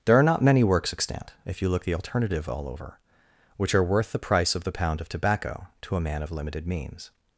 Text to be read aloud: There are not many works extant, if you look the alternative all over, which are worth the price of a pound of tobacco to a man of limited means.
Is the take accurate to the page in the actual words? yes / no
no